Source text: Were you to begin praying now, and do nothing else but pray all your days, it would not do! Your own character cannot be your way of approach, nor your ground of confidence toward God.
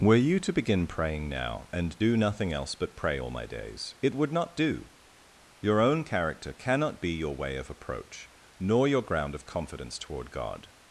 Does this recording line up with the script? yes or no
no